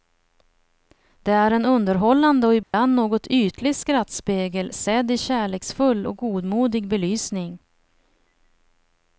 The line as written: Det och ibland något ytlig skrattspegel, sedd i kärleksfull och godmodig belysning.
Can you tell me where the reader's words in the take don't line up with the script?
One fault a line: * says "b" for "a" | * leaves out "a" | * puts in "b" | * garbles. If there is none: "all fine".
* puts in "är en underhållande"